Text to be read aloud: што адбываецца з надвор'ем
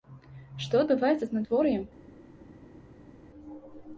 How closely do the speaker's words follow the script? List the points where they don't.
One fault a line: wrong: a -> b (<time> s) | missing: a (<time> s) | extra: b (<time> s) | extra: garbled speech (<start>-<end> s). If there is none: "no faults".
no faults